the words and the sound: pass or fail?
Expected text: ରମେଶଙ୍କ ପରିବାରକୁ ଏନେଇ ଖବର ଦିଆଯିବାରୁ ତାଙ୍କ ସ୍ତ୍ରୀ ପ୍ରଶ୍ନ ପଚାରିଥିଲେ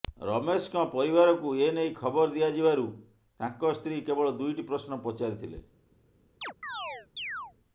fail